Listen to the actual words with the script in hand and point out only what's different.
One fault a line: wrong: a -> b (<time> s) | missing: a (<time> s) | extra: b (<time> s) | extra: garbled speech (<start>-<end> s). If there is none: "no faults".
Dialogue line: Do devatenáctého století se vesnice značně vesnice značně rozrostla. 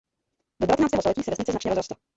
missing: vesnice značně (1.7 s)